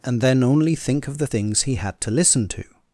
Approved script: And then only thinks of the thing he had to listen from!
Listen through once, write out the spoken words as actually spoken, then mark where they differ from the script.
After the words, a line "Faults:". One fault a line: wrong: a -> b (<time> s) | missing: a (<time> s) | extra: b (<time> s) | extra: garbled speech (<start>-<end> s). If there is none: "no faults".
And then only think of the things he had to listen to!
Faults:
wrong: thinks -> think (0.8 s)
wrong: thing -> things (1.2 s)
wrong: from -> to (2.5 s)